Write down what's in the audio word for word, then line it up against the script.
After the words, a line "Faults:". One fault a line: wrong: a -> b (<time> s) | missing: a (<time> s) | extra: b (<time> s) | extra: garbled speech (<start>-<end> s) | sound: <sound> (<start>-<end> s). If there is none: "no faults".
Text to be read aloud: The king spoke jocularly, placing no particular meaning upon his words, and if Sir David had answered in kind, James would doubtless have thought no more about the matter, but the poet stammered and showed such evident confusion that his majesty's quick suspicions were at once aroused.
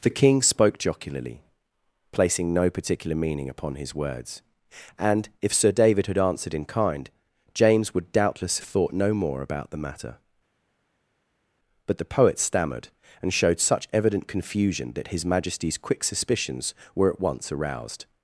The king spoke jocularly, placing no particular meaning upon his words, and if Sir David had answered in kind, James would doubtless thought no more about the matter, but the poet stammered and showed such evident confusion that his majesty's quick suspicions were at once aroused.
Faults:
missing: have (8.6 s)